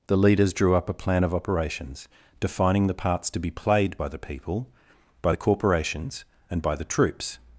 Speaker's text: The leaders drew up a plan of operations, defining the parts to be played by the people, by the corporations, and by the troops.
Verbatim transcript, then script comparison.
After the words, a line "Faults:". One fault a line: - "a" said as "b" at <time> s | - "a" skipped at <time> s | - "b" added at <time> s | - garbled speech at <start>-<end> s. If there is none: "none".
The leaders drew up a plan of operations, defining the parts to be played by the people, by the corporations, and by the troops.
Faults:
none